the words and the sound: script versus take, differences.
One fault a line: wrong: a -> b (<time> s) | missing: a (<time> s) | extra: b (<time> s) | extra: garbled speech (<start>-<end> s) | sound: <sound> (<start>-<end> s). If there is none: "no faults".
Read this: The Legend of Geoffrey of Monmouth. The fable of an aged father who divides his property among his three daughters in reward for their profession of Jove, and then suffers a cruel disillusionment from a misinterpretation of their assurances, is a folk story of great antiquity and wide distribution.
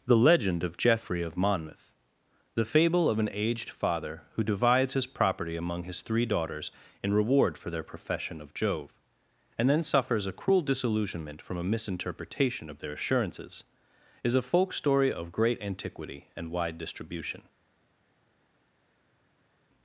no faults